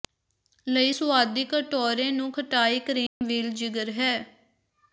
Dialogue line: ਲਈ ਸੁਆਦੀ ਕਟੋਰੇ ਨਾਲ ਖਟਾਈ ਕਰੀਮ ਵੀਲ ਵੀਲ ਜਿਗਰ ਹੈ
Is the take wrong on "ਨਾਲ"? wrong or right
wrong